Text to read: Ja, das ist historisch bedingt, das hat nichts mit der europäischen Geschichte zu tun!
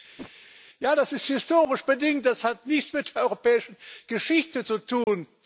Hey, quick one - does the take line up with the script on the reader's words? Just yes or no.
yes